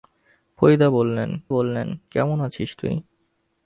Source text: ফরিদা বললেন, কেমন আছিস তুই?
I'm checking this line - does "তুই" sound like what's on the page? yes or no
yes